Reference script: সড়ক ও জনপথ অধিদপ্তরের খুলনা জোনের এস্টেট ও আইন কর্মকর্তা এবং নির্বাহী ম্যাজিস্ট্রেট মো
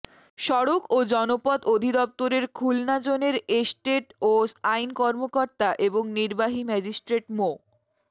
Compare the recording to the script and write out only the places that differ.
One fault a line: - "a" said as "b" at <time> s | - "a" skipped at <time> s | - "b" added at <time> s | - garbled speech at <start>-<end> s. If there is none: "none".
none